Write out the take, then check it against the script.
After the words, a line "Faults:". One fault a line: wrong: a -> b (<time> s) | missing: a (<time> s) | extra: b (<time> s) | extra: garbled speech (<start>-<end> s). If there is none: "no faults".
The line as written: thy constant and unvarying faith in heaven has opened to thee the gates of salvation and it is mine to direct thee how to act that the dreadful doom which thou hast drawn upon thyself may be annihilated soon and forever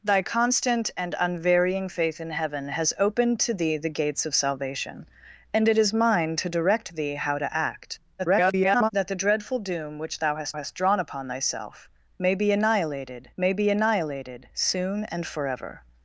thy constant and unvarying faith in heaven has opened to thee the gates of salvation and it is mine to direct thee how to act [garbled] that the dreadful doom which thou hast hast drawn upon thyself may be annihilated may be annihilated soon and forever
Faults:
extra: garbled speech (8.2-8.9 s)
extra: hast (10.5 s)
extra: may be annihilated (13.4 s)